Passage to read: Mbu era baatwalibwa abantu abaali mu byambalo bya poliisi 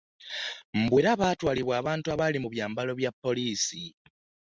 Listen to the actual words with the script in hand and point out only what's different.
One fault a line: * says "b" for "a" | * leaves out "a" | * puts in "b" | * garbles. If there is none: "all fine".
all fine